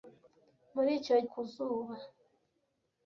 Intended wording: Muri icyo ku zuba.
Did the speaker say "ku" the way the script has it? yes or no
yes